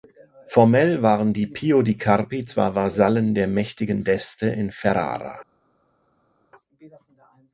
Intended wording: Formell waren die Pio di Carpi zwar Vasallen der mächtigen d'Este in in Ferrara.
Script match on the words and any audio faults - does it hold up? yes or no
no